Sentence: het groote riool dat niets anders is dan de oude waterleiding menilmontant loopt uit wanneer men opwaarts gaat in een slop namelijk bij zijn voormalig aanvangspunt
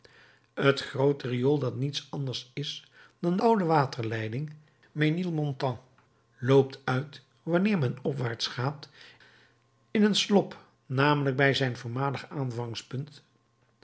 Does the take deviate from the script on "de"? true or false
true